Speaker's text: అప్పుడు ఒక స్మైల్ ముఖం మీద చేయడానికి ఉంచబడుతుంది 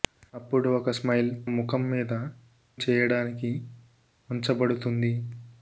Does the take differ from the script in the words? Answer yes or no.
no